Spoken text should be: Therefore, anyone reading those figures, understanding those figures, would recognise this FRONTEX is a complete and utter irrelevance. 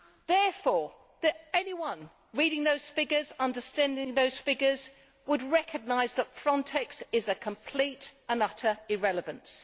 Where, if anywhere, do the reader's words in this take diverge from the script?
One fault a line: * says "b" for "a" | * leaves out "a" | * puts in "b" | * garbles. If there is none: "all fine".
* says "that" for "this"